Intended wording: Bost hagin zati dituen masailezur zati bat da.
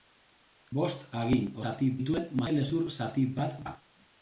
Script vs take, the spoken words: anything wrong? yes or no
no